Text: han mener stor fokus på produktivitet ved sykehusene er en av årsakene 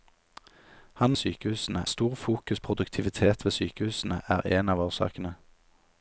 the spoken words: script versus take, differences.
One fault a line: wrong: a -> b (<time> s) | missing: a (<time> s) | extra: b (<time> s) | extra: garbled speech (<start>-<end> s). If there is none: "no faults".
wrong: mener -> sykehusene (1.2 s)
missing: på (2.6 s)